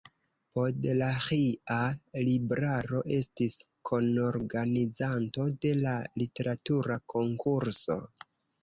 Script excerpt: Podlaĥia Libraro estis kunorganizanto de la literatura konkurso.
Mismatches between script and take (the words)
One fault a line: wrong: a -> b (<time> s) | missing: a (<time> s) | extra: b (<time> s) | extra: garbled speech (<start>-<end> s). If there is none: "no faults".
no faults